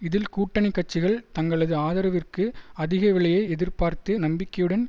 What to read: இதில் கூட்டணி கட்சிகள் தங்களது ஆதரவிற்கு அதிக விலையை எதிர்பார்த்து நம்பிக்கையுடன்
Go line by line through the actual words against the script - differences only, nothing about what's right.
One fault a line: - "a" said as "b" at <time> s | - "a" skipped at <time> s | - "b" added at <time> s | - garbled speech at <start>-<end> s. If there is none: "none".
none